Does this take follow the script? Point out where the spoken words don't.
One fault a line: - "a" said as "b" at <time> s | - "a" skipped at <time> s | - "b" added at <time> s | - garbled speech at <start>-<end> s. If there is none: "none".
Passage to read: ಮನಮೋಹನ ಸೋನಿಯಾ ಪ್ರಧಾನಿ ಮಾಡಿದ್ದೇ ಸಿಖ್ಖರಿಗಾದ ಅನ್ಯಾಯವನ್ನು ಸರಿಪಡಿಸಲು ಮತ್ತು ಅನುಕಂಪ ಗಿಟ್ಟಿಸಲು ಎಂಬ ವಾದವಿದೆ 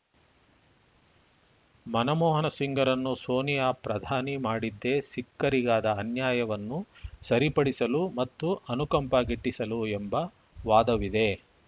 - "ಸಿಂಗ್‌ರನ್ನು" added at 2.5 s